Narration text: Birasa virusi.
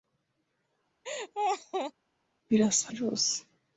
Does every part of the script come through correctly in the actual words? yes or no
yes